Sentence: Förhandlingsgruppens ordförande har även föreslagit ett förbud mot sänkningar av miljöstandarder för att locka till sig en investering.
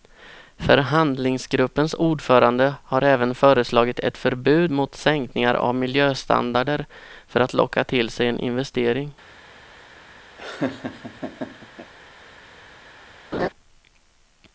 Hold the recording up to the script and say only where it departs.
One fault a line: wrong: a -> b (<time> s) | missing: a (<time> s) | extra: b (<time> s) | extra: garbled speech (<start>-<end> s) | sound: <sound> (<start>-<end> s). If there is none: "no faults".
sound: laugh (10.4-11.9 s)
sound: laugh (13.3-13.5 s)